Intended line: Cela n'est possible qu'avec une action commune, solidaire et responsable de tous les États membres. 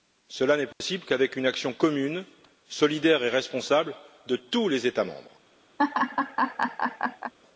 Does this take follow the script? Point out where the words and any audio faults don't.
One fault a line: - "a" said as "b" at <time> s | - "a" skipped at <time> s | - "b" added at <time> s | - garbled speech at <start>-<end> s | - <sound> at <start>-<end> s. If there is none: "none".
- dropout at 0.7-0.8 s
- laugh at 5.8-7.3 s